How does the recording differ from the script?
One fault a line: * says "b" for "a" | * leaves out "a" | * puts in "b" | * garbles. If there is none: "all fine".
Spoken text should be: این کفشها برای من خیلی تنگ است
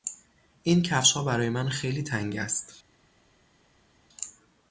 all fine